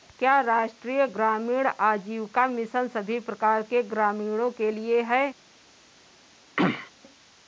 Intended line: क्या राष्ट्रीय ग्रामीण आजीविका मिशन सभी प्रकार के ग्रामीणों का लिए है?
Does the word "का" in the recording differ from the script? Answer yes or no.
yes